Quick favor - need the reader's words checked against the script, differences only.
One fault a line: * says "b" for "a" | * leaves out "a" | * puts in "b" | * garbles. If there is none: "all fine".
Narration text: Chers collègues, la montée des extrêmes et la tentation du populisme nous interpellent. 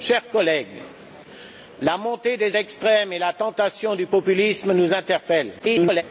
* garbles